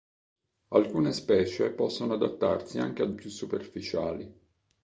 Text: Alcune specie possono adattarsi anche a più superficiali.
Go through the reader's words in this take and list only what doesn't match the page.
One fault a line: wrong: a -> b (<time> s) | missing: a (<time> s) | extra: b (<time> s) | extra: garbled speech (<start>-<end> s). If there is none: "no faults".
no faults